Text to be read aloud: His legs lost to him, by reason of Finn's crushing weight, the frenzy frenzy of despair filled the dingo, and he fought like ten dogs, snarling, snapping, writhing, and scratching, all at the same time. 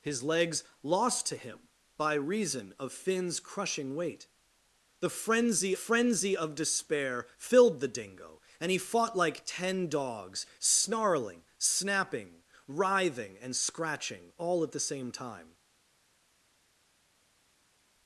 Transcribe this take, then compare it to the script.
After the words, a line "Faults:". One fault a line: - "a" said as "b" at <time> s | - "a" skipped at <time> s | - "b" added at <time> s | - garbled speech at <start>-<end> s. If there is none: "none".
His legs lost to him, by reason of Finn's crushing weight, the frenzy frenzy of despair filled the dingo, and he fought like ten dogs, snarling, snapping, writhing, and scratching, all at the same time.
Faults:
none